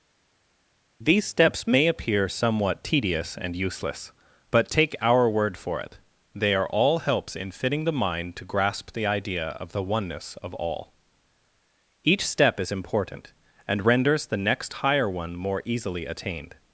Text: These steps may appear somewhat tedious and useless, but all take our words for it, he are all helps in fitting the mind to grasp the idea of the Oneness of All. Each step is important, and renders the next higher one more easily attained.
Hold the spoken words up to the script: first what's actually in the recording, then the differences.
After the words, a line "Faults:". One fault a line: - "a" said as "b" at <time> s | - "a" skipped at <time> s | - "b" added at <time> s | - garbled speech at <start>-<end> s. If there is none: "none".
These steps may appear somewhat tedious and useless, but take our word for it, they are all helps in fitting the mind to grasp the idea of the Oneness of All. Each step is important, and renders the next higher one more easily attained.
Faults:
- "all" skipped at 4.7 s
- "words" said as "word" at 5.3 s
- "he" said as "they" at 6.4 s